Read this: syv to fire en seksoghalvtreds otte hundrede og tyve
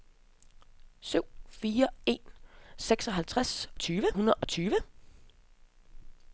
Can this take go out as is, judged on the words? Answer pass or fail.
fail